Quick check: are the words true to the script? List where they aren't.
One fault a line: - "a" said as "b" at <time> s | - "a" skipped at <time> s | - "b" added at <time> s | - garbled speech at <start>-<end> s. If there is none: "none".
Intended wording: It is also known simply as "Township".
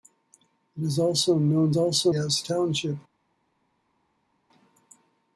- "simply" said as "also" at 1.7 s